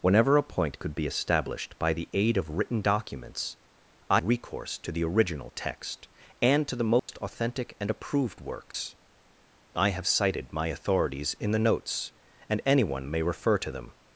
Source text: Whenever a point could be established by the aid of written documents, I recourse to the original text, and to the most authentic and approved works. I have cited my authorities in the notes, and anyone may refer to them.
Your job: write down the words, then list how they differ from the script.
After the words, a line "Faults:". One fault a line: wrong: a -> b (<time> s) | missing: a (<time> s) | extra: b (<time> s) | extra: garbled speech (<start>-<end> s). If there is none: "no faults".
Whenever a point could be established by the aid of written documents, I recourse to the original text, and to the most authentic and approved works. I have cited my authorities in the notes, and anyone may refer to them.
Faults:
no faults